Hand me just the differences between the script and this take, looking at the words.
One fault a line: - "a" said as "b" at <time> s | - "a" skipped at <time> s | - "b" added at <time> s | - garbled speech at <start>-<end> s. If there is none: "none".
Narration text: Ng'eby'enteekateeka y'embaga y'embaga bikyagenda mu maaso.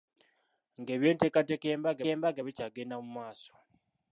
none